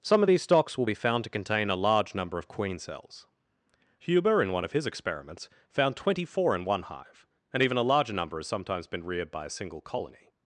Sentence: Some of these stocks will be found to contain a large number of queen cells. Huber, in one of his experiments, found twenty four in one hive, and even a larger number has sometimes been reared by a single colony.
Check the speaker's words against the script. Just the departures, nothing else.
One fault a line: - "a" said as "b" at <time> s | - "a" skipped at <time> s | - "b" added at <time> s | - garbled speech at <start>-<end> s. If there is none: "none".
none